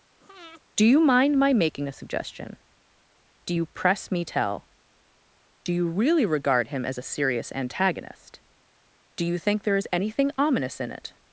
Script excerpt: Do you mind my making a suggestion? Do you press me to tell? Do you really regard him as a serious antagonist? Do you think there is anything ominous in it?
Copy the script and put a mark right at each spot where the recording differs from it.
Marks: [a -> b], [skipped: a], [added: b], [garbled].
Do you mind my making a suggestion? Do you press me [skipped: to] tell? Do you really regard him as a serious antagonist? Do you think there is anything ominous in it?